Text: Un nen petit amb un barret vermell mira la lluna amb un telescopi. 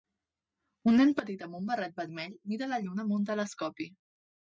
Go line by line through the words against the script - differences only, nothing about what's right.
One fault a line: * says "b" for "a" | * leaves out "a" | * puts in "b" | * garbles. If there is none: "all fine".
all fine